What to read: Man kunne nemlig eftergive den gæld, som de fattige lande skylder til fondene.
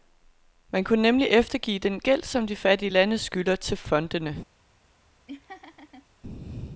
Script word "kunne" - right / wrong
right